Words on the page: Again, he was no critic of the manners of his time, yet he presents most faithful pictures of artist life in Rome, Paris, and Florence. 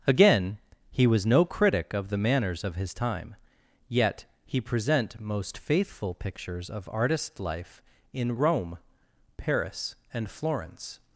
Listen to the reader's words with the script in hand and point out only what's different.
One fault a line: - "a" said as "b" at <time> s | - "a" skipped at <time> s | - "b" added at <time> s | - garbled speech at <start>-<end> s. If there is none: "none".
- "presents" said as "present" at 4.6 s